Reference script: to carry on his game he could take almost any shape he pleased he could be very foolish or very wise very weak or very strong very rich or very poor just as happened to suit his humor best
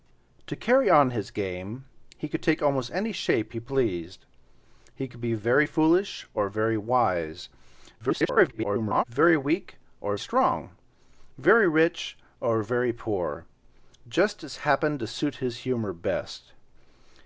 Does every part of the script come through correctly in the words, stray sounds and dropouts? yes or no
no